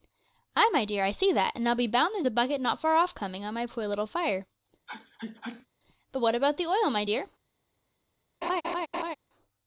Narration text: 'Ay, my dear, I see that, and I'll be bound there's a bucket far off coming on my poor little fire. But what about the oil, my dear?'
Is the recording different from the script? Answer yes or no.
yes